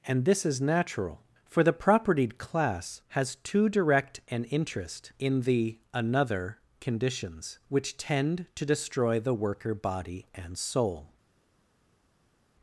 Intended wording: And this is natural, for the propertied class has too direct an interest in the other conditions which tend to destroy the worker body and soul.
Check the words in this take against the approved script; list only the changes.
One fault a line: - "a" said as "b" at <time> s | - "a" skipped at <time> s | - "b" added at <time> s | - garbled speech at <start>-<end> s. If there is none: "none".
- "other" said as "another" at 5.9 s